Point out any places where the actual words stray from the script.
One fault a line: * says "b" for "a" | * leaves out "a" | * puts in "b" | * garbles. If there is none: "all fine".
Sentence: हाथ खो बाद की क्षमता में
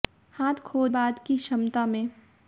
all fine